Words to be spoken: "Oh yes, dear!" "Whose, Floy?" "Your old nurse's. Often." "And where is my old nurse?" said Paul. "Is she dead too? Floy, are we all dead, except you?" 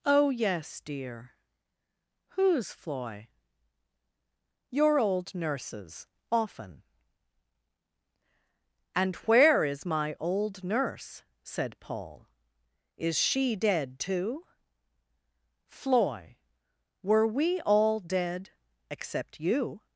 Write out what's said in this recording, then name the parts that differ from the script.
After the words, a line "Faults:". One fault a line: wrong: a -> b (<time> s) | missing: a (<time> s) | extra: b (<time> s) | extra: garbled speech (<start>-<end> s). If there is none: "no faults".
"Oh yes, dear!" "Whose, Floy?" "Your old nurse's. Often." "And where is my old nurse?" said Paul. "Is she dead too? Floy, were we all dead, except you?"
Faults:
wrong: are -> were (17.0 s)